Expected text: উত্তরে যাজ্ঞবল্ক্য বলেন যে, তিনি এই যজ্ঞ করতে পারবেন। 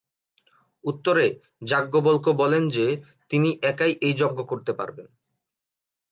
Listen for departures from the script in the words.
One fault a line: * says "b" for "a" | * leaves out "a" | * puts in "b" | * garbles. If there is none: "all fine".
* puts in "একাই"